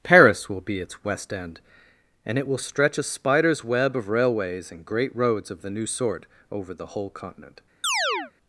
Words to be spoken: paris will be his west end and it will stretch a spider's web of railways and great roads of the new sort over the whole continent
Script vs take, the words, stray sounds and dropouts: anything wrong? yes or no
yes